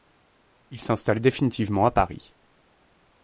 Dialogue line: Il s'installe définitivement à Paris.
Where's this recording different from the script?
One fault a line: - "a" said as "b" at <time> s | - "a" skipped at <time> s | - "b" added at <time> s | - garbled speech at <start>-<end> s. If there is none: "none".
none